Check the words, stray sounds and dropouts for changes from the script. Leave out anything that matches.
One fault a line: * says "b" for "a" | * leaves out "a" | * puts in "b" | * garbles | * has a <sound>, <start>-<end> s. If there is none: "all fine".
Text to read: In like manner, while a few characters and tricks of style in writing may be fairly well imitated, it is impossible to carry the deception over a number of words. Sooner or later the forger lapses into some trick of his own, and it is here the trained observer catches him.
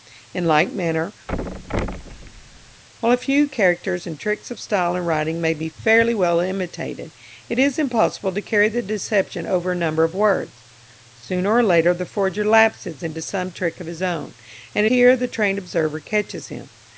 * has a thud, 1.3-2.8 s
* leaves out "is"